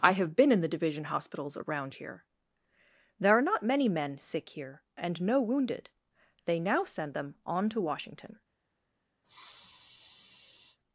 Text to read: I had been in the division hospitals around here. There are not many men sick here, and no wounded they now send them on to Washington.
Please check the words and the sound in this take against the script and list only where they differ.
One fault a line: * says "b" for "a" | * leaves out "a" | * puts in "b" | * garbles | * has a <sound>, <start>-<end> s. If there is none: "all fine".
* says "have" for "had"
* has a sniff, 9.2-10.8 s